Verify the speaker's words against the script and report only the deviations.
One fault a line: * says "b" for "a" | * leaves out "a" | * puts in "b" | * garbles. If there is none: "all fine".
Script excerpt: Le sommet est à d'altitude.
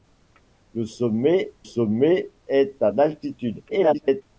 * puts in "sommet"
* garbles